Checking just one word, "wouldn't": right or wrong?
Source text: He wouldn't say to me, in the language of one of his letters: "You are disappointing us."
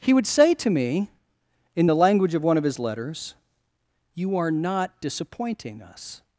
wrong